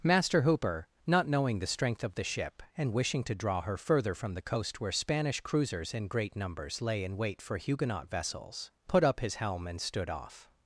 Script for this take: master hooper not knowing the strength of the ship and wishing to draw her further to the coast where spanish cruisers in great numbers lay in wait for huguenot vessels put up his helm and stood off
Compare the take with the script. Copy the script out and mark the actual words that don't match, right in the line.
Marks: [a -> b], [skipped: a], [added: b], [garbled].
master hooper not knowing the strength of the ship and wishing to draw her further [to -> from] the coast where spanish cruisers in great numbers lay in wait for huguenot vessels put up his helm and stood off